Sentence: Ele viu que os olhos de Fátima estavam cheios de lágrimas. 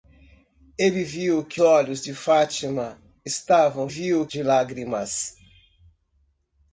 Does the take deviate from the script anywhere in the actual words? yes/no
yes